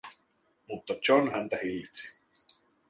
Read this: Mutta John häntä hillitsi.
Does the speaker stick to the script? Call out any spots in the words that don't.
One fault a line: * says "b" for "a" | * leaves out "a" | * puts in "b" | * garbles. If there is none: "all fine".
all fine